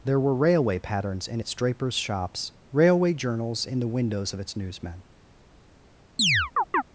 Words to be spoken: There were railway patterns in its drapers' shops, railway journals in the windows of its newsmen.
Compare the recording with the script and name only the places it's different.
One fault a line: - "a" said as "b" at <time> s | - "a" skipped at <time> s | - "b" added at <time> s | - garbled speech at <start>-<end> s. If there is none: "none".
none